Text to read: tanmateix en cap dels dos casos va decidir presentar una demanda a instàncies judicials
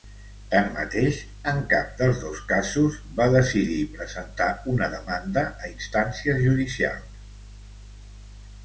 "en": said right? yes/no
yes